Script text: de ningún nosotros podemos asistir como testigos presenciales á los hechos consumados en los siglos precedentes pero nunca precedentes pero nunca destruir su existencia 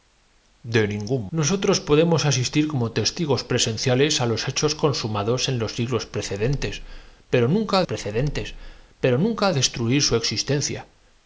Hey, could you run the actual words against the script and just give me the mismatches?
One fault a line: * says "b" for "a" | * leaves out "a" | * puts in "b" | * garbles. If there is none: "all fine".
all fine